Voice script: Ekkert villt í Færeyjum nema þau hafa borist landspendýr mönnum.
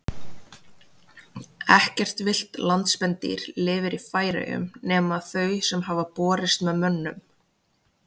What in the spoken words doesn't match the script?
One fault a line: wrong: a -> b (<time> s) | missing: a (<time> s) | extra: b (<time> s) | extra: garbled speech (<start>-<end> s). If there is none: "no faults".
extra: landspendýr lifir (2.7 s)
extra: sem (5.7 s)
wrong: landspendýr -> með (6.7 s)